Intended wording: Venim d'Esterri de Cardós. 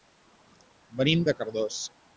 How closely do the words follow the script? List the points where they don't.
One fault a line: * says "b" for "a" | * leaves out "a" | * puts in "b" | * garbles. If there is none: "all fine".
* leaves out "d'Esterri"